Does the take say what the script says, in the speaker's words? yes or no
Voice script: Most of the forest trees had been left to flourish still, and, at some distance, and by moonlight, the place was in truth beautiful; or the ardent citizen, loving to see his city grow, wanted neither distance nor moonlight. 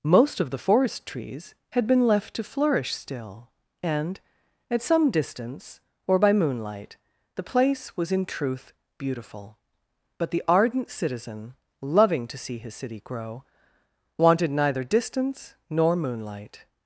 no